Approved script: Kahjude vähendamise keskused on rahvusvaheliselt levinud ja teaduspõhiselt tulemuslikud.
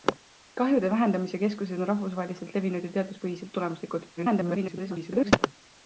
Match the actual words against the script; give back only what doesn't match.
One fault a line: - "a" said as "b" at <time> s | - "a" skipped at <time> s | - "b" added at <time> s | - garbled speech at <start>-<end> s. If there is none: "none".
- garbled speech at 4.2-5.3 s